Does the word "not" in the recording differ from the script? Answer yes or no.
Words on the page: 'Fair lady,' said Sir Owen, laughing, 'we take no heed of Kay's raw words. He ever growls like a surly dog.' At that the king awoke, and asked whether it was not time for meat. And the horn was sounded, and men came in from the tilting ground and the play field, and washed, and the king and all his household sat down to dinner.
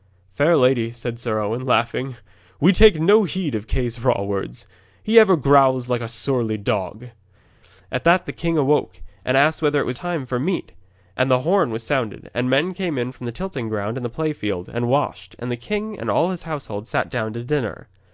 yes